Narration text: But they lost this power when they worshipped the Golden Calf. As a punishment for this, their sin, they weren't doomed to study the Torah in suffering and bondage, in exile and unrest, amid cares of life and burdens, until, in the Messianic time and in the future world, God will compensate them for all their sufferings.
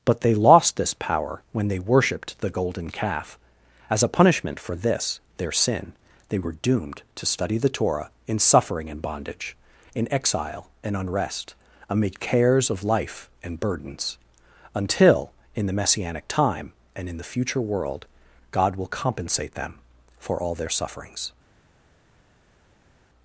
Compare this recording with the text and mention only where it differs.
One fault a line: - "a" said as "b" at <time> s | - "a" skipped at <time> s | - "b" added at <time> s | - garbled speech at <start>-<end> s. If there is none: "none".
- "weren't" said as "were" at 6.4 s